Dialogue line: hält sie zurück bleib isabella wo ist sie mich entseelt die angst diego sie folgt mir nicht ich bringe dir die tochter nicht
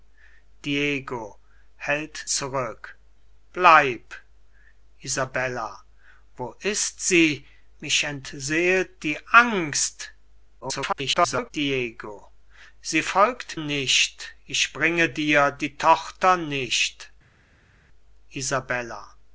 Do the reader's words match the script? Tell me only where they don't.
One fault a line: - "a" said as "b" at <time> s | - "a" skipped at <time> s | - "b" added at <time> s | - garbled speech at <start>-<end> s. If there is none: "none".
- "sie" skipped at 2.2 s
- garbled speech at 10.6-11.5 s
- "mir" skipped at 13.6 s